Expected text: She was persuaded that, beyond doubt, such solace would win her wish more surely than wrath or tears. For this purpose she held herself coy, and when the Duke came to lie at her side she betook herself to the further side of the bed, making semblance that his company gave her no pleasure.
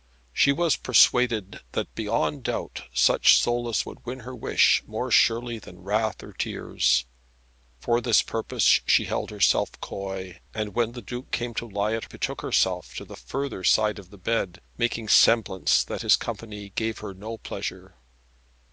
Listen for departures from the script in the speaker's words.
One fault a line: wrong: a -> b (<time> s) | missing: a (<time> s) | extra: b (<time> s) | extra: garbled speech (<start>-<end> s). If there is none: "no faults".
missing: her side she (12.0 s)